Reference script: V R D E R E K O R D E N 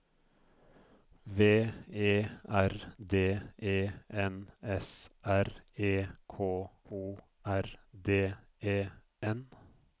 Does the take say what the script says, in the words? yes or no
no